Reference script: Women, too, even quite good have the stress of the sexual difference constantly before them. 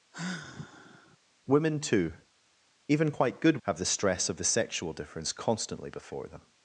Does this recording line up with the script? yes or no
yes